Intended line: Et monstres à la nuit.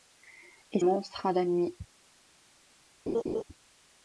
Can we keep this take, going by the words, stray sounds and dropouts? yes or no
no